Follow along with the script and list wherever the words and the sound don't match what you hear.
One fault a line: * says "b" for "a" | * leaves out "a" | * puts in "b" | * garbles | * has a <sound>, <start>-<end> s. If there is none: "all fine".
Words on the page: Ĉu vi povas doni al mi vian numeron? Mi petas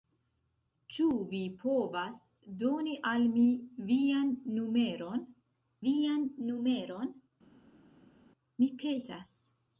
* puts in "vian numeron"